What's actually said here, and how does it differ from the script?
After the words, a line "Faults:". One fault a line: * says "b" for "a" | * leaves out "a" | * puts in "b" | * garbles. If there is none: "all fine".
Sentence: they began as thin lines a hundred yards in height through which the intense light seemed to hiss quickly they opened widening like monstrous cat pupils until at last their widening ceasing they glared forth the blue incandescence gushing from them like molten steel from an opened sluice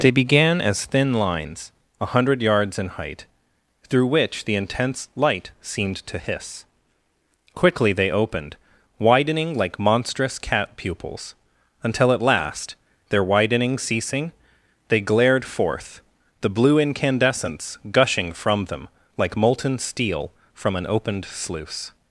they began as thin lines a hundred yards in height through which the intense light seemed to hiss quickly they opened widening like monstrous cat pupils until at last their widening ceasing they glared forth the blue incandescence gushing from them like molten steel from an opened sluice
Faults:
all fine